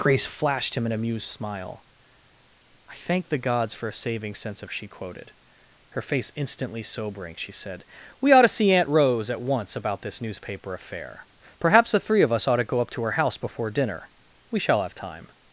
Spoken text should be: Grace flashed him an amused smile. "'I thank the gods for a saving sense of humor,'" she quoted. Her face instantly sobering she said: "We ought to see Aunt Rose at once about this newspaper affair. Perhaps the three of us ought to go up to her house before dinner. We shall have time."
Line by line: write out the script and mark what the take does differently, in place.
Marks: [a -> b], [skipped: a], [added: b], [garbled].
Grace flashed him an amused smile. "'I thank the gods for a saving sense of [skipped: humor,'"] she quoted. Her face instantly sobering she said: "We ought to see Aunt Rose at once about this newspaper affair. Perhaps the three of us ought to go up to her house before dinner. We shall have time."